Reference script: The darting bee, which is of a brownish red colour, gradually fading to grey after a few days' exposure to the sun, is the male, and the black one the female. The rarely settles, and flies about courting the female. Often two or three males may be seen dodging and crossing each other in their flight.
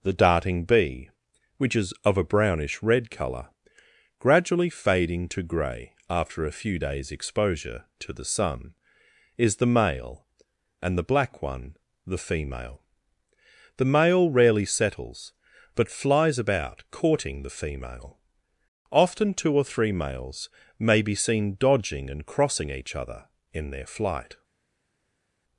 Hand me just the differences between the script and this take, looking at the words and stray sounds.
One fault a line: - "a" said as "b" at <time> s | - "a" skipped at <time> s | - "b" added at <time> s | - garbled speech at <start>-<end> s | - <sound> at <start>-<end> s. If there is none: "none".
- "male" added at 13.8 s
- "and" said as "but" at 15.8 s